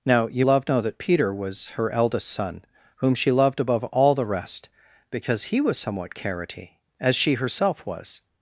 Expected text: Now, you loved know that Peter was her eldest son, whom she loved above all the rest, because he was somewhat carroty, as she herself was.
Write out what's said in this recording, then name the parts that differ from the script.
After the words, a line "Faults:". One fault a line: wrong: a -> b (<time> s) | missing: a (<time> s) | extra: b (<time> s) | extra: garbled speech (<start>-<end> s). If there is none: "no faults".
Now, you loved know that Peter was her eldest son, whom she loved above all the rest, because he was somewhat carroty, as she herself was.
Faults:
no faults